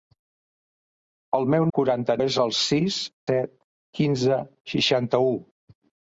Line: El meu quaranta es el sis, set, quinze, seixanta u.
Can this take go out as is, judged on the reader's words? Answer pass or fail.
pass